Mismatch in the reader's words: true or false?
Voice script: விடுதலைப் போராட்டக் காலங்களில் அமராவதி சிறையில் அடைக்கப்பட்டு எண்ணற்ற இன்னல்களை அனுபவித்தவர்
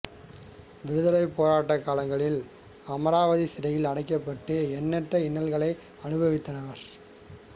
false